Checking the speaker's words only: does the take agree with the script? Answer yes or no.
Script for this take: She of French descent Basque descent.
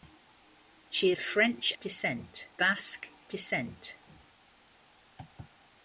yes